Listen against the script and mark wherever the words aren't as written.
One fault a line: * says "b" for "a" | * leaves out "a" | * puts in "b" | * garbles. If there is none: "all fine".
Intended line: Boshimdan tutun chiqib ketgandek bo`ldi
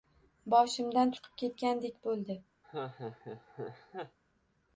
* leaves out "tutun"